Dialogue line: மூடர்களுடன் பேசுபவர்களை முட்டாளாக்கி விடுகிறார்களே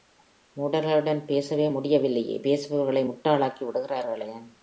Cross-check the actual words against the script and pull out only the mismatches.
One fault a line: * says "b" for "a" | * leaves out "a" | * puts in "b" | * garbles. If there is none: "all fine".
* puts in "பேசவே முடியவில்லையே"